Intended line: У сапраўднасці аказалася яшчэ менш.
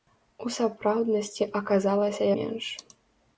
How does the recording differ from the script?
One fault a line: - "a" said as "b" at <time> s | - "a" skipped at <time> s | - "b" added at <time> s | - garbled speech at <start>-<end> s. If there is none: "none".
- "яшчэ" skipped at 2.2 s